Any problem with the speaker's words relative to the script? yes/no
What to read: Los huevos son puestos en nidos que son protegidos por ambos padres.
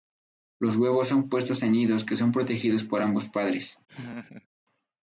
no